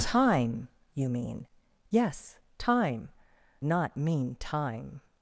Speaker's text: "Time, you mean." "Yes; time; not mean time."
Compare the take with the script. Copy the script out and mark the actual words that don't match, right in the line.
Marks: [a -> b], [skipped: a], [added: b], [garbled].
"Time, you mean." "Yes; time; not mean time."